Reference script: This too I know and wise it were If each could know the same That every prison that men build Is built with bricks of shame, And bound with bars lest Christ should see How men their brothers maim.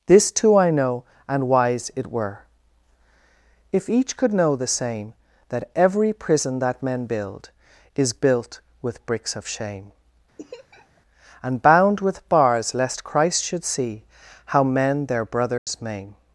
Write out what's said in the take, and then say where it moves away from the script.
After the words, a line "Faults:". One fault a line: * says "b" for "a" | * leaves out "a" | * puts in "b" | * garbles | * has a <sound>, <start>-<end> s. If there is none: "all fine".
This too I know and wise it were If each could know the same That every prison that men build Is built with bricks of shame, And bound with bars lest Christ should see How men their brothers maim.
Faults:
* has a laugh, 10.4-11.0 s
* has a dropout, 15.6-15.7 s